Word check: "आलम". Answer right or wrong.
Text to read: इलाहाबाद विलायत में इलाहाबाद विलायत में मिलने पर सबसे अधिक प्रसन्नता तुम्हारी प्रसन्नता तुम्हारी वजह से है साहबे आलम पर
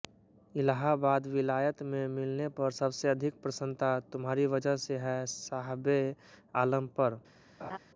right